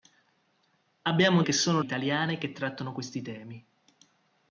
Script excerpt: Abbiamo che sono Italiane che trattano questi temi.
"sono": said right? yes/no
yes